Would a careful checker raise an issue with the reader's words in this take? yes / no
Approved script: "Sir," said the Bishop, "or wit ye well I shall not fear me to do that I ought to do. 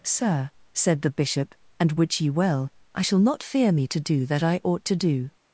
yes